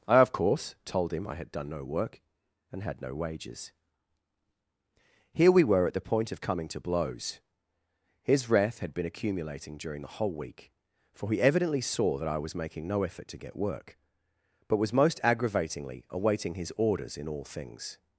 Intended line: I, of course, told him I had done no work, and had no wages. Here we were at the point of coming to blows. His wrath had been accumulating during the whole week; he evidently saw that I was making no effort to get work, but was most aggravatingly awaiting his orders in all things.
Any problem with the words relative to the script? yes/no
yes